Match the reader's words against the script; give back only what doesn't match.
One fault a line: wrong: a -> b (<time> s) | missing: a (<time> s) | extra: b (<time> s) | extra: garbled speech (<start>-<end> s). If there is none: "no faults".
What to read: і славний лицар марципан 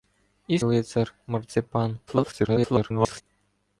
missing: славний (0.6 s)
extra: garbled speech (2.1-3.2 s)